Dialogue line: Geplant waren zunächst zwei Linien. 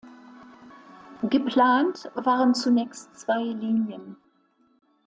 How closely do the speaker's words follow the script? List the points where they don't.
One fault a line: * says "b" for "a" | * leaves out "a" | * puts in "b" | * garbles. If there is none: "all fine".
all fine